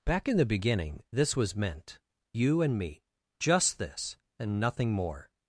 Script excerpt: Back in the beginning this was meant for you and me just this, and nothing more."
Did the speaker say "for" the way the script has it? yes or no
no